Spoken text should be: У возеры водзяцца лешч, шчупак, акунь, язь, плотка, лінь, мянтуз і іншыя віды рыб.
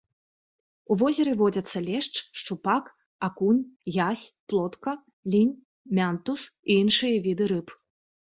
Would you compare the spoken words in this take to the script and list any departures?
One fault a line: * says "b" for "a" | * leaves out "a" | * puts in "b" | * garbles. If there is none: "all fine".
all fine